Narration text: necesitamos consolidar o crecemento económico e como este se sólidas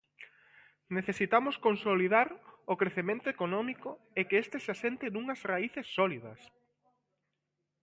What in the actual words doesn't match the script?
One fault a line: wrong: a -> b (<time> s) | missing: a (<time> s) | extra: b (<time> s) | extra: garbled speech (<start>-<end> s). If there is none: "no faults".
wrong: como -> que (4.3 s)
extra: asente nunhas raíces (4.8 s)